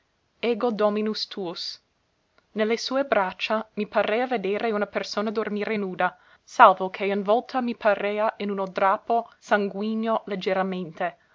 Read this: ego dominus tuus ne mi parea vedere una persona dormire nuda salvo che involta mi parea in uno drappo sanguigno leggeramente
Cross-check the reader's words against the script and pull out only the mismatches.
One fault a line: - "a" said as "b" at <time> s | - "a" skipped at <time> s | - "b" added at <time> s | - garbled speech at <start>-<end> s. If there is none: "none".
- "le sue braccia" added at 2.6 s